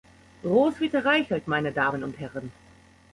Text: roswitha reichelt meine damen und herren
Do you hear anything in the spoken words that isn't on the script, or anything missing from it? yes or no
no